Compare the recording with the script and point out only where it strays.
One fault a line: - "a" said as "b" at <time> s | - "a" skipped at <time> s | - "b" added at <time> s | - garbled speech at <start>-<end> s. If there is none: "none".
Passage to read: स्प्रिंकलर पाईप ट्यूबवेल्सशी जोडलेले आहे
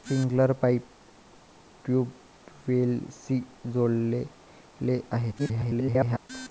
- garbled speech at 5.4-6.3 s